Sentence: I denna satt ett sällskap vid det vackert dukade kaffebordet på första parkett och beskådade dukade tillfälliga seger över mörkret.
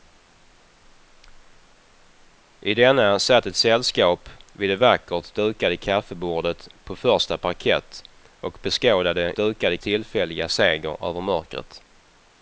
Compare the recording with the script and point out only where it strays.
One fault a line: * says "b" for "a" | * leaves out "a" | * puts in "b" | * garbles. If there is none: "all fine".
all fine